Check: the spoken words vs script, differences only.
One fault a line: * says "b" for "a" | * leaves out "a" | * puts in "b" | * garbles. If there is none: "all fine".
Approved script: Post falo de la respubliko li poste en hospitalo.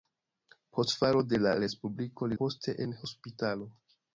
all fine